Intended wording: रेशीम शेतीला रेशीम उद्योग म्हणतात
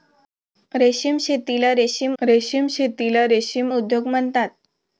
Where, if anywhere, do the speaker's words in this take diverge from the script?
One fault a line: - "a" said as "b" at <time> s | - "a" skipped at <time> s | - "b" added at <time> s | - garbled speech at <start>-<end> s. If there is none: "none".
- "रेशीम शेतीला रेशीम" added at 2.2 s